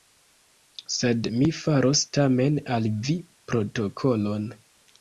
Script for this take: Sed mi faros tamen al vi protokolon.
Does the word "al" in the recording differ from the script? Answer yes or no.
no